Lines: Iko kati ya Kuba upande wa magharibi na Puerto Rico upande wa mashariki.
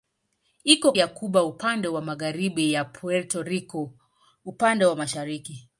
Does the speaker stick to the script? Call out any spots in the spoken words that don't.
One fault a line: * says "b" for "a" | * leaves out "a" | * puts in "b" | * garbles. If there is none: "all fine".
* leaves out "kati"